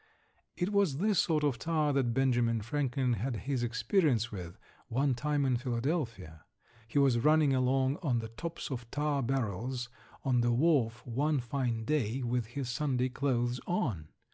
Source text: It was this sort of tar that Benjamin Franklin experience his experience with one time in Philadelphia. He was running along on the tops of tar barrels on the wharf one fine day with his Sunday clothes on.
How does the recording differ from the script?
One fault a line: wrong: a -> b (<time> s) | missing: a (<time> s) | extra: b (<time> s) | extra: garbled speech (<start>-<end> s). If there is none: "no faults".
wrong: experience -> had (3.2 s)